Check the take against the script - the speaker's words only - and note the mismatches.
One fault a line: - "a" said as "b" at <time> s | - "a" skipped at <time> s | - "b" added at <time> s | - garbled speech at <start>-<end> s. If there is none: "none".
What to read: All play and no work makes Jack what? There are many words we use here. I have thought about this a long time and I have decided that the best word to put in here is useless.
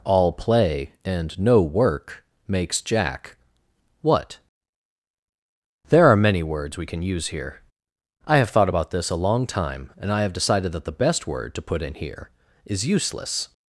- "can" added at 6.9 s